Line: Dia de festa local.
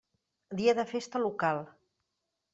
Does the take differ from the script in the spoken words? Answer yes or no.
no